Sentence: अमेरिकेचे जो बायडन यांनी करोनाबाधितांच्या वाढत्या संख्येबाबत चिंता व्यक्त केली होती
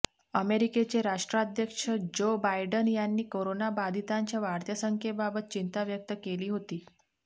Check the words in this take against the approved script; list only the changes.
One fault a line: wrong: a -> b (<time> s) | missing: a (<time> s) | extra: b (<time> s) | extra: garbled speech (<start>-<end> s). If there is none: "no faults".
extra: राष्ट्राध्यक्ष (1.0 s)